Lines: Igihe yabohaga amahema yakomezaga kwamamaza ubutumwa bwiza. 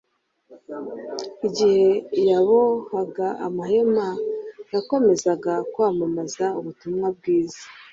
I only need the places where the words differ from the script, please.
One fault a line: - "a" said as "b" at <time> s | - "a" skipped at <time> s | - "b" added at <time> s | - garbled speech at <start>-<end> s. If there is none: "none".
none